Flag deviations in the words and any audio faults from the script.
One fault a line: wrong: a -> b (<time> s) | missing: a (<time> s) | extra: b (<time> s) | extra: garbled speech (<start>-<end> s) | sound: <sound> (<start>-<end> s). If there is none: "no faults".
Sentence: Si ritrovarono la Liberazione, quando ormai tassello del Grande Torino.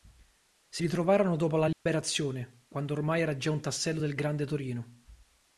extra: dopo (1.3 s)
sound: dropout (1.7-1.9 s)
extra: era già un (3.2 s)